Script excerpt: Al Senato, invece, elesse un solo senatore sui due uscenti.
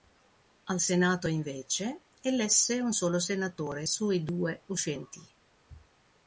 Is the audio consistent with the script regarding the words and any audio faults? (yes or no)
yes